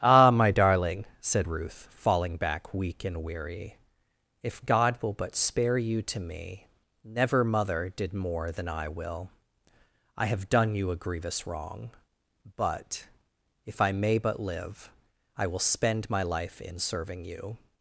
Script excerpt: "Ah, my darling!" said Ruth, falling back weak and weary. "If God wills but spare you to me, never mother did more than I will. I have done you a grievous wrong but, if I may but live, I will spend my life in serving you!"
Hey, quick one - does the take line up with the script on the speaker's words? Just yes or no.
no